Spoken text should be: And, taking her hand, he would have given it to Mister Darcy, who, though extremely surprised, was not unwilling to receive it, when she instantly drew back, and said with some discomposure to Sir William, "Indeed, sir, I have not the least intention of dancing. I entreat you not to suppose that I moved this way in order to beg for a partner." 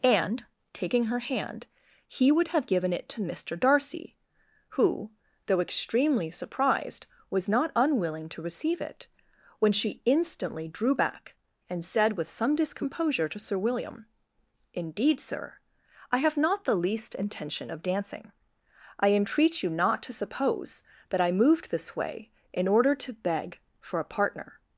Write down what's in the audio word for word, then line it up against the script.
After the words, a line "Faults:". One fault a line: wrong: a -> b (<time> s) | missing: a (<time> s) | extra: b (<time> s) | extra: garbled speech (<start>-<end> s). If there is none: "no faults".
And, taking her hand, he would have given it to Mister Darcy, who, though extremely surprised, was not unwilling to receive it, when she instantly drew back, and said with some discomposure to Sir William, "Indeed, sir, I have not the least intention of dancing. I entreat you not to suppose that I moved this way in order to beg for a partner."
Faults:
no faults